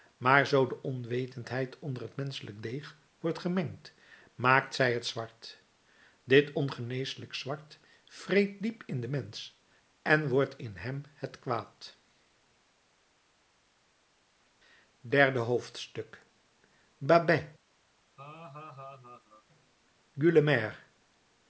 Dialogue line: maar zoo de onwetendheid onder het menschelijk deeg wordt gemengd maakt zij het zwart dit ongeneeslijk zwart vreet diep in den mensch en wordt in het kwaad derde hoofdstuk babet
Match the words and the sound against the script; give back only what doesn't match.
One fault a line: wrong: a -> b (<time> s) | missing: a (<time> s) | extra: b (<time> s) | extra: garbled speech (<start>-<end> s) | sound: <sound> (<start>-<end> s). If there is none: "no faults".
extra: hem (10.8 s)
sound: laugh (18.2-19.4 s)